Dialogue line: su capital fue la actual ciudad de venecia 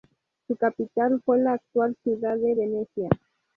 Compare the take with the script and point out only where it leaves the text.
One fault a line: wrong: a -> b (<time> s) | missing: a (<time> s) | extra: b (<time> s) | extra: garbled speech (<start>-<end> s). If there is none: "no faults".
no faults